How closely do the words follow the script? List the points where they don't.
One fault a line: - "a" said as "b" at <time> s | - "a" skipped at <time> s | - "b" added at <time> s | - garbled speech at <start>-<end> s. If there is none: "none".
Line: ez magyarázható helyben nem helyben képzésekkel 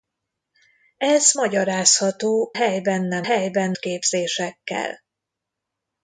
none